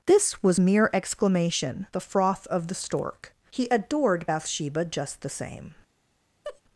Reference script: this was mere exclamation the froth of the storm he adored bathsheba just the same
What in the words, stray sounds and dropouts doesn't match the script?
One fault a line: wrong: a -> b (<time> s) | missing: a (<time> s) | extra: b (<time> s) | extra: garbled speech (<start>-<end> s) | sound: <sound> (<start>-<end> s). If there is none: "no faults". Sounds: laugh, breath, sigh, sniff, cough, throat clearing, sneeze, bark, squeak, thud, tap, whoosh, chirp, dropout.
wrong: storm -> stork (2.7 s)
sound: laugh (6.4-6.6 s)